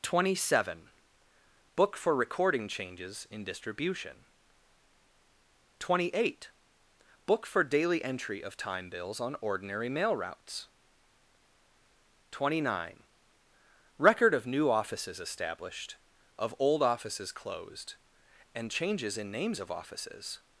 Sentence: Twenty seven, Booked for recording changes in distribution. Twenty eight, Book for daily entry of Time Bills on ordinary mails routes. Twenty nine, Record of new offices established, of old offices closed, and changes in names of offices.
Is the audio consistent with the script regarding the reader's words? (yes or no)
no